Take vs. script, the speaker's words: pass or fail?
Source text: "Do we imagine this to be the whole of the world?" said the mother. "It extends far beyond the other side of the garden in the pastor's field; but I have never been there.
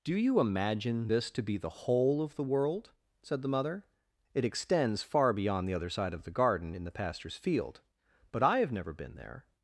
fail